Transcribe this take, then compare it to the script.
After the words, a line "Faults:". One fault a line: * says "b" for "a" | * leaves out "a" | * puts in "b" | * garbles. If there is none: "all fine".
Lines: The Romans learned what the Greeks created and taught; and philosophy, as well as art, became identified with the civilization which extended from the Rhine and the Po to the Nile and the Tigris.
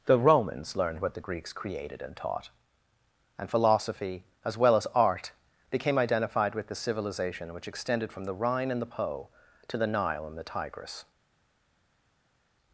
The Romans learned what the Greeks created and taught; and philosophy, as well as art, became identified with the civilization which extended from the Rhine and the Po to the Nile and the Tigris.
Faults:
all fine